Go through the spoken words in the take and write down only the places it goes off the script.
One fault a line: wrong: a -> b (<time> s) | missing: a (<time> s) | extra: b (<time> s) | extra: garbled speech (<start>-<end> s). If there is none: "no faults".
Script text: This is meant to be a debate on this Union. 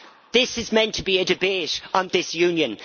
no faults